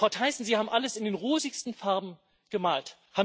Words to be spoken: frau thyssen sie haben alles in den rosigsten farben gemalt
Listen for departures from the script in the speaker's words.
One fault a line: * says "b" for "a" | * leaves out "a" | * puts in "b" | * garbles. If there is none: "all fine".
all fine